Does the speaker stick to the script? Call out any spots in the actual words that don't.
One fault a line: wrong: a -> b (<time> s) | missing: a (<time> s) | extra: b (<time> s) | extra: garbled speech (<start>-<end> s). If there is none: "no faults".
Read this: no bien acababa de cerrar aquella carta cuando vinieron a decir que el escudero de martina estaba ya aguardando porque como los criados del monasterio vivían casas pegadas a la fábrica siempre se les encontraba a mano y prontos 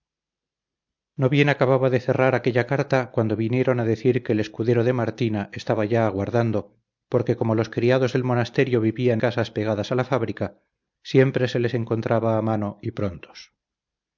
no faults